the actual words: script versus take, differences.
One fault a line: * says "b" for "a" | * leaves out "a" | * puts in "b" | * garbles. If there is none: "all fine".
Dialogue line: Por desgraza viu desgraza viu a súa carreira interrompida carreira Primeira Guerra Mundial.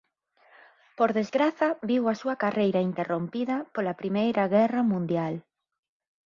* leaves out "desgraza viu"
* says "pola" for "carreira"